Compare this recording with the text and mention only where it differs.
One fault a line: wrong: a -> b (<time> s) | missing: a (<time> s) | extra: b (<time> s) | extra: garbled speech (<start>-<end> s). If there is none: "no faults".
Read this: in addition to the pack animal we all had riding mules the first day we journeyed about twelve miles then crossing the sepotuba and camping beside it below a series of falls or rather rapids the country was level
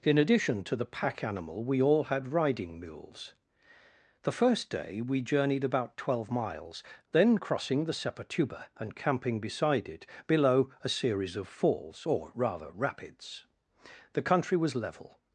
no faults